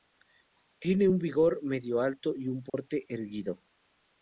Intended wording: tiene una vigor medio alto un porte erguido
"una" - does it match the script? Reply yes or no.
no